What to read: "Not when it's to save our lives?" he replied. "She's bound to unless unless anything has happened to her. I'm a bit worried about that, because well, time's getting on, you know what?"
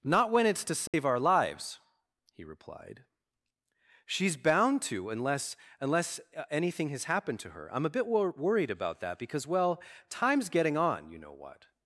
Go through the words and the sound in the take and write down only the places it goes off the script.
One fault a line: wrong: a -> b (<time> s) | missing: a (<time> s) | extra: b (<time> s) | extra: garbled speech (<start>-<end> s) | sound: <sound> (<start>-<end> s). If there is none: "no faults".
sound: dropout (0.9-0.9 s)
extra: wor (8.1 s)